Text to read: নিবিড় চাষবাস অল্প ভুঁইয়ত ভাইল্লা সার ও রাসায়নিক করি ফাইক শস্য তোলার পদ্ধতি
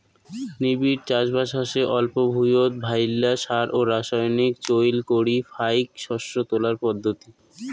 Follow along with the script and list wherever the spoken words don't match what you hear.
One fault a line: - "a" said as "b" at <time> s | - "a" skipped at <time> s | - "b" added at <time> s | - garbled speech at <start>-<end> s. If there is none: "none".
- "হসে" added at 1.6 s
- "চইল" added at 4.7 s